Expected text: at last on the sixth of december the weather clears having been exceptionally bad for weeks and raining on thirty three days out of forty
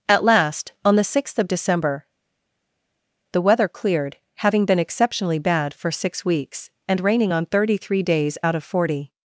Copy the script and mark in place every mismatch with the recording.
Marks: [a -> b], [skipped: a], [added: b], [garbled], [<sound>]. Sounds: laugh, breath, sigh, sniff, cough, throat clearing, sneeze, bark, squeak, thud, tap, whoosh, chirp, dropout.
at last on the sixth of december the weather [clears -> cleared] having been exceptionally bad for [added: six] weeks and raining on thirty three days out of forty